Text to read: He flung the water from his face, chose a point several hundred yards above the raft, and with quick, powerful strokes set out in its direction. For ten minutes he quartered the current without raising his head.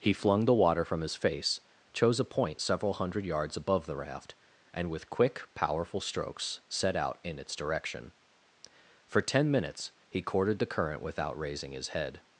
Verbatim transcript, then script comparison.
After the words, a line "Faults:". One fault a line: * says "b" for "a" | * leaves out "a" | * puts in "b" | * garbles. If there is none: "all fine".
He flung the water from his face, chose a point several hundred yards above the raft, and with quick, powerful strokes set out in its direction. For ten minutes he courted the current without raising his head.
Faults:
* says "courted" for "quartered"